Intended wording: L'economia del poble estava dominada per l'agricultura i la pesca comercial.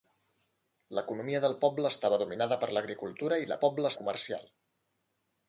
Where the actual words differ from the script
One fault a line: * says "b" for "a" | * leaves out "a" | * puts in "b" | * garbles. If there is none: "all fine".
* says "poble" for "pesca"